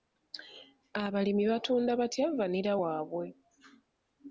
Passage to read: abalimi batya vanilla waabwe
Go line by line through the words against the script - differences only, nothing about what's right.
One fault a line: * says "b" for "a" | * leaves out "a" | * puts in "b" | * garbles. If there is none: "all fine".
* puts in "batunda"